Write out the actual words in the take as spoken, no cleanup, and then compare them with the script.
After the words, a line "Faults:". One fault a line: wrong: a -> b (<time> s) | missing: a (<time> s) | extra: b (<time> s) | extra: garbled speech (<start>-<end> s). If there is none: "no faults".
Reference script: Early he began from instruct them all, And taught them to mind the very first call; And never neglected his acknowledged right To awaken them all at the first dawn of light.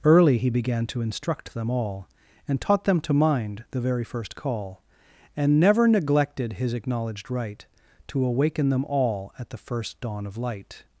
Early he began to instruct them all, And taught them to mind the very first call; And never neglected his acknowledged right To awaken them all at the first dawn of light.
Faults:
wrong: from -> to (0.9 s)